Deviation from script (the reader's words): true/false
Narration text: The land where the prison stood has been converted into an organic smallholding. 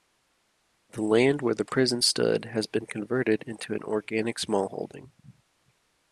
false